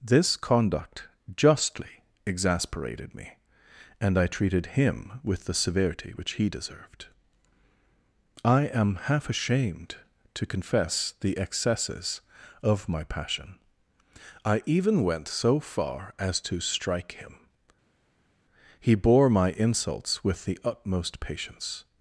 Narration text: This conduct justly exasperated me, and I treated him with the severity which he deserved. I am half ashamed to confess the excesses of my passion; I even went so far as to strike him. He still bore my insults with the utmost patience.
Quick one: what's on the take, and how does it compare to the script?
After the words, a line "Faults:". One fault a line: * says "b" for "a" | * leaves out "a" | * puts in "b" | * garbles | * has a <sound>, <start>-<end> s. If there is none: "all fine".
This conduct justly exasperated me, and I treated him with the severity which he deserved. I am half ashamed to confess the excesses of my passion; I even went so far as to strike him. He bore my insults with the utmost patience.
Faults:
* leaves out "still"